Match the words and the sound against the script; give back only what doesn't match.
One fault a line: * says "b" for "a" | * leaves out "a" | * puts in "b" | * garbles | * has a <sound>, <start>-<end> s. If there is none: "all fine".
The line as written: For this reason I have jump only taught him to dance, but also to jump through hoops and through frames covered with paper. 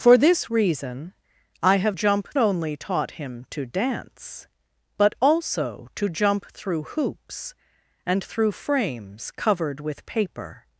all fine